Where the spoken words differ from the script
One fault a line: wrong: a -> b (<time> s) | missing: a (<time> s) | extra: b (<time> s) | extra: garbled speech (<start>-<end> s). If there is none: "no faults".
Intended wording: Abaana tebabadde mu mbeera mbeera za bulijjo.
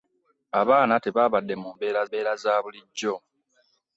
no faults